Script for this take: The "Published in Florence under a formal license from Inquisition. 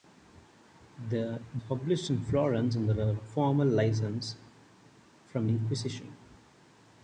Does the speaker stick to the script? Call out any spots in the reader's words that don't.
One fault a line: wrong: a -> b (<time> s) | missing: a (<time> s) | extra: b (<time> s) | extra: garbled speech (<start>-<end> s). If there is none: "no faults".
no faults